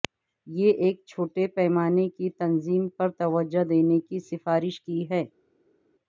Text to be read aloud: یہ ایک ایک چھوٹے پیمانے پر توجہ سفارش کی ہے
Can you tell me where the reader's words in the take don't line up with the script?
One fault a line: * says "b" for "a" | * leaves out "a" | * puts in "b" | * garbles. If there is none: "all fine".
* leaves out "ایک"
* puts in "کی تنظیم"
* puts in "دینے کی"